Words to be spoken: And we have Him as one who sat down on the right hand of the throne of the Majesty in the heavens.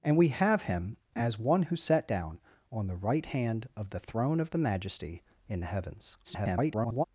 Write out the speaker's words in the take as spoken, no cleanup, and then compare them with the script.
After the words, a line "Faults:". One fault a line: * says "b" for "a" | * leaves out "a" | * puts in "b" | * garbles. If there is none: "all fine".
And we have Him as one who sat down on the right hand of the throne of the Majesty in the heavens. [garbled]
Faults:
* garbles